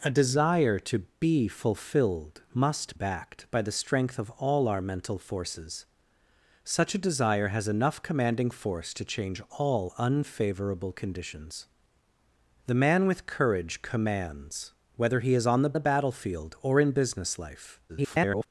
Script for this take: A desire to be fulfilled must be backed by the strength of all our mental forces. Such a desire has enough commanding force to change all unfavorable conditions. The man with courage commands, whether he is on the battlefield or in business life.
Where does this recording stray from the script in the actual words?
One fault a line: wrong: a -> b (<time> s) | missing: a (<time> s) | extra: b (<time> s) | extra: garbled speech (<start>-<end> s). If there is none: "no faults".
missing: be (3.0 s)
extra: the (15.7 s)
extra: garbled speech (17.9-18.5 s)